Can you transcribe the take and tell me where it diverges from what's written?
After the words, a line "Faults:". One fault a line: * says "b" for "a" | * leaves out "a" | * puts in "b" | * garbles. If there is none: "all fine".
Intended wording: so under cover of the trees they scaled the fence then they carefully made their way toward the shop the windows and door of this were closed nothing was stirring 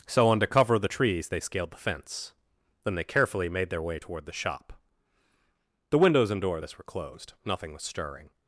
so under cover of the trees they scaled the fence then they carefully made their way toward the shop the windows and door of this were closed nothing was stirring
Faults:
all fine